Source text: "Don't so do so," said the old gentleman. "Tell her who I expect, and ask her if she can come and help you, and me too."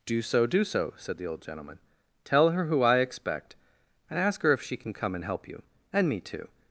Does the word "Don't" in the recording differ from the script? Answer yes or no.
yes